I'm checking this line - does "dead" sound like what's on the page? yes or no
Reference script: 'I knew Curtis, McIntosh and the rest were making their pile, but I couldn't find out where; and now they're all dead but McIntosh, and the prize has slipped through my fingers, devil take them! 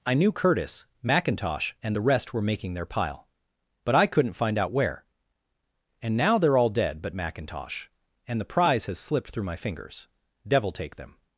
yes